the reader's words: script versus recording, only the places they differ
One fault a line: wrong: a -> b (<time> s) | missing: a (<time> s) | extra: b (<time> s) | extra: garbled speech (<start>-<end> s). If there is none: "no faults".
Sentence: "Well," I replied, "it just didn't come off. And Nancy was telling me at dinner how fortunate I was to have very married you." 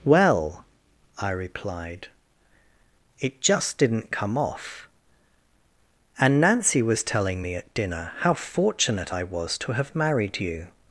missing: very (9.9 s)